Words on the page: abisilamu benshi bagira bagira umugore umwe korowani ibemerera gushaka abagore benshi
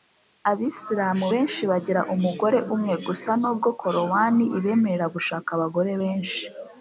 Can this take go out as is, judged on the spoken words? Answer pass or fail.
fail